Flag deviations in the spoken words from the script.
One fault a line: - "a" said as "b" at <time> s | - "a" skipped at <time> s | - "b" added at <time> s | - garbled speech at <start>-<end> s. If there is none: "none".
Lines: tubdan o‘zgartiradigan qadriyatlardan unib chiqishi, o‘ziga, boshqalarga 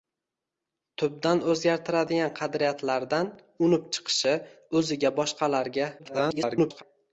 - garbled speech at 6.0-6.8 s